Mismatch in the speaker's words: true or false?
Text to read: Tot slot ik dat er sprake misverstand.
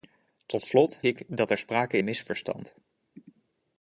false